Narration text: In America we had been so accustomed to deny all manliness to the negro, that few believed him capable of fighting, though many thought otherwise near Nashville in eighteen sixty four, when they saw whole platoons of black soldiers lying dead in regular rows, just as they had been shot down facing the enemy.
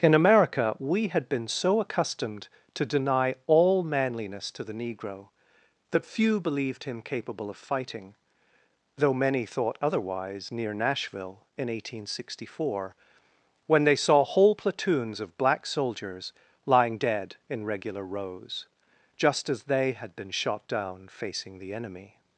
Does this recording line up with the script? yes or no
yes